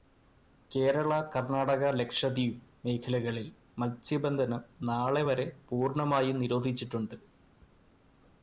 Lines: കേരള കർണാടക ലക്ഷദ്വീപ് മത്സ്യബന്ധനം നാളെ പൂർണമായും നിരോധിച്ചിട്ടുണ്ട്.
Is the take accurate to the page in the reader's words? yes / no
no